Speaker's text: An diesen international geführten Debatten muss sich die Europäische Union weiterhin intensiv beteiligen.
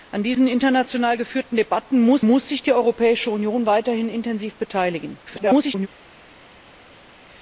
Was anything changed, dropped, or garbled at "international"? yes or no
no